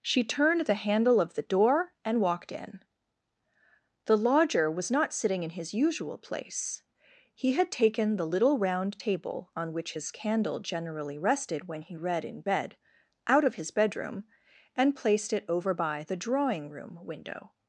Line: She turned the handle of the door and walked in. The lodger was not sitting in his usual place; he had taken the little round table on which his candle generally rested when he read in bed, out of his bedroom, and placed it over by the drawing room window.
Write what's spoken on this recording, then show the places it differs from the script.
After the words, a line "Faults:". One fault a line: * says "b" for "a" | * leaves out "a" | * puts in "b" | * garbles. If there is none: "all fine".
She turned the handle of the door and walked in. The lodger was not sitting in his usual place; he had taken the little round table on which his candle generally rested when he read in bed, out of his bedroom, and placed it over by the drawing room window.
Faults:
all fine